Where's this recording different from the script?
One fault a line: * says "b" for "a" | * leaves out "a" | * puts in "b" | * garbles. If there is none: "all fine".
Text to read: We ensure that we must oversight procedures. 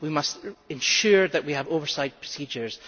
* puts in "must"
* says "have" for "must"